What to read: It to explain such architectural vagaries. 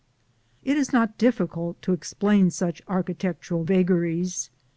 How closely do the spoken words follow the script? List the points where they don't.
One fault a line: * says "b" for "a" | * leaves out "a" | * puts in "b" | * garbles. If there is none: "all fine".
* puts in "is not difficult"